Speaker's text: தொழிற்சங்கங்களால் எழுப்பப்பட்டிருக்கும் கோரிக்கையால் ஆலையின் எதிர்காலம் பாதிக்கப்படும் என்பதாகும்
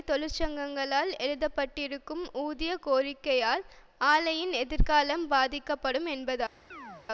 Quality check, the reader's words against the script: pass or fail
fail